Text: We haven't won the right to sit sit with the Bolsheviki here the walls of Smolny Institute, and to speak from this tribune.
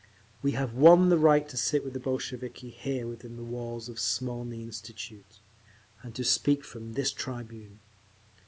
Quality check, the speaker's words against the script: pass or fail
fail